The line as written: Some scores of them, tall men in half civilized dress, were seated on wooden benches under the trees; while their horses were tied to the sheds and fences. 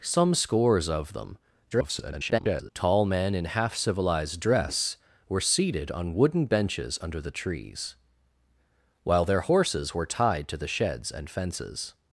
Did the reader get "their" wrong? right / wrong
right